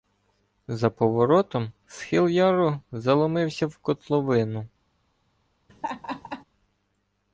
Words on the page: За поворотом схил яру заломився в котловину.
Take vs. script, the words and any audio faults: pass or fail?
fail